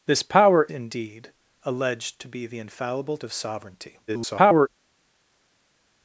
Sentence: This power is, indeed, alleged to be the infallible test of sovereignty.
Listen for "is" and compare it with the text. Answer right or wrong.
wrong